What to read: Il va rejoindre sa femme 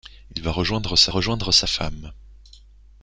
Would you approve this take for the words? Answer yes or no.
no